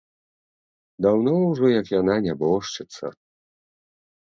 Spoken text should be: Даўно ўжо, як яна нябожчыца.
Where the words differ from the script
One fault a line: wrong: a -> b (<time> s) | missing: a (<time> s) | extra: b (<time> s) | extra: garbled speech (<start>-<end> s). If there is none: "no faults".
no faults